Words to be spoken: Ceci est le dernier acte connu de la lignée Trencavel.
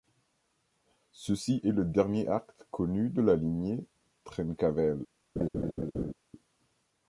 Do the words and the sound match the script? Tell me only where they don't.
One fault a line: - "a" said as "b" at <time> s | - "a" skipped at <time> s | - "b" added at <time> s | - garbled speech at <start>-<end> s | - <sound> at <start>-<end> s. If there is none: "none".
- laugh at 5.4-6.1 s